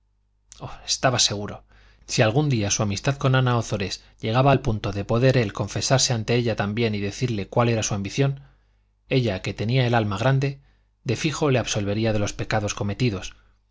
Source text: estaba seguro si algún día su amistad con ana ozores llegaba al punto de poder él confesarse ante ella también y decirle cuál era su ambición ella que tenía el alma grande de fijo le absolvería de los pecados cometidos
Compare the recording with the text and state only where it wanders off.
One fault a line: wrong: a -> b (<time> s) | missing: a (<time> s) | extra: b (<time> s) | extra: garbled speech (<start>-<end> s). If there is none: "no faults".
no faults